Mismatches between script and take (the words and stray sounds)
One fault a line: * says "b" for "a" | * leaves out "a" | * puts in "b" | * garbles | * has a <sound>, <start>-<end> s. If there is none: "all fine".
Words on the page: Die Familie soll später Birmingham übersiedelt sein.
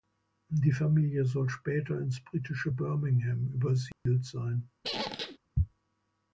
* puts in "ins britische"
* has a dropout, 3.9-4.1 s
* has a squeak, 4.8-5.4 s